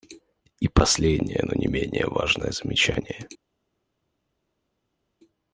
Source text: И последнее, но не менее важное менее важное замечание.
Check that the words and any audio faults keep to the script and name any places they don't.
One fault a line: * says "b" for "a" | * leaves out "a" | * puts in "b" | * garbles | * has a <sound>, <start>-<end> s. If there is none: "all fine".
* leaves out "менее важное"